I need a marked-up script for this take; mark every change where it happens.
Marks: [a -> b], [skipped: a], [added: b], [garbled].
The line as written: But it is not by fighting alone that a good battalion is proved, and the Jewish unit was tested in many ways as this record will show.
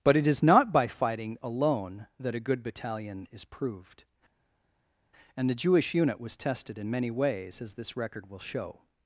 But it is not by fighting alone that a good battalion is proved, and the Jewish unit was tested in many ways as this record will show.